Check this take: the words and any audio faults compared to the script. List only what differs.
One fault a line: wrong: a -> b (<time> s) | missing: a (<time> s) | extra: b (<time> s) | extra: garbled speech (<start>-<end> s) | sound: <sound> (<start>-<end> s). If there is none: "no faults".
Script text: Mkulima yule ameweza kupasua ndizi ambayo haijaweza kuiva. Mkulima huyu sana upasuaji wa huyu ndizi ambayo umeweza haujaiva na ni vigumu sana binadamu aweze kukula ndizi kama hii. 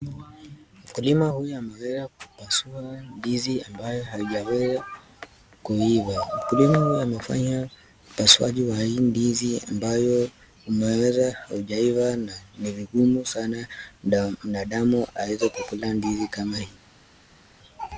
wrong: yule -> huyu (1.3 s)
wrong: sana -> amefanya (7.0 s)
wrong: huyu -> hii (8.8 s)